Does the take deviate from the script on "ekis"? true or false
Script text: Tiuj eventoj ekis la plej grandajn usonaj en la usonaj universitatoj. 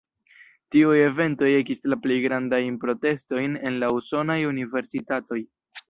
false